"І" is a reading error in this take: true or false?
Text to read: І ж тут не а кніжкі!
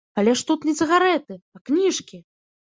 true